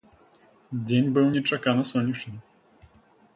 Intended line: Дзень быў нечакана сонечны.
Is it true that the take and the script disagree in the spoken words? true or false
false